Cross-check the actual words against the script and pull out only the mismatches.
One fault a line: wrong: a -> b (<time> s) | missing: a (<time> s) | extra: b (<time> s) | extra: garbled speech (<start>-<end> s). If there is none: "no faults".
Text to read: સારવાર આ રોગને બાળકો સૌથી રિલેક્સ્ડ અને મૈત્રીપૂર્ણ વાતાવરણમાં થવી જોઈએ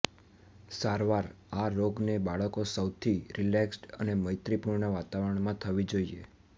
no faults